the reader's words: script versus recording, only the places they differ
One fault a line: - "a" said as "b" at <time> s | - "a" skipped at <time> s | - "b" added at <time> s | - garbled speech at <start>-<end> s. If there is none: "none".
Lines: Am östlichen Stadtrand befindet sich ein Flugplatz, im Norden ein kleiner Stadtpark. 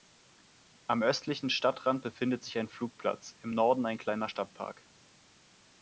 none